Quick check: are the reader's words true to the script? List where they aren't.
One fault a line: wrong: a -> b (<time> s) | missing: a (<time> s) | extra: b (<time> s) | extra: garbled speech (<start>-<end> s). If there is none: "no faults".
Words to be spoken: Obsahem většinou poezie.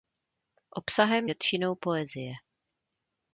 no faults